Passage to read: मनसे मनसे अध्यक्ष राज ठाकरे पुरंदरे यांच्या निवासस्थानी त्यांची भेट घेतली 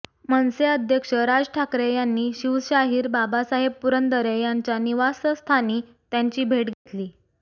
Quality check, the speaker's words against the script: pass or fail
fail